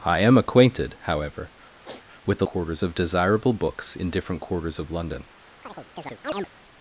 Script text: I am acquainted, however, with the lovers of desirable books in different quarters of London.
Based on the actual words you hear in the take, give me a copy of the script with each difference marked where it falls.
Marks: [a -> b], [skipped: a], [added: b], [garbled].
I am acquainted, however, with the [lovers -> quarters] of desirable books in different quarters of London.